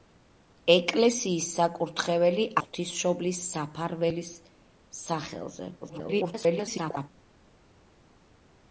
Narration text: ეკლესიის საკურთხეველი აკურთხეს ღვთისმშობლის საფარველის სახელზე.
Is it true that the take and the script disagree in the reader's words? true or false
true